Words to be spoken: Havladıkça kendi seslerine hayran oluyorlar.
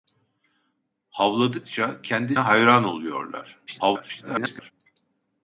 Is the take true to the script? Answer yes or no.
no